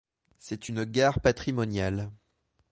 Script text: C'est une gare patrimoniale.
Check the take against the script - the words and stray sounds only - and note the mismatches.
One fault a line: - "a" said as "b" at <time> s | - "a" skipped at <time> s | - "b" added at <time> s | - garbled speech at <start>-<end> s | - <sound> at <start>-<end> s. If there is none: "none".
none